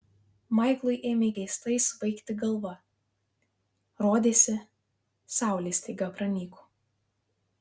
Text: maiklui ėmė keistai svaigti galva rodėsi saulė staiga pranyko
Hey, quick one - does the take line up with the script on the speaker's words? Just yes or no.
yes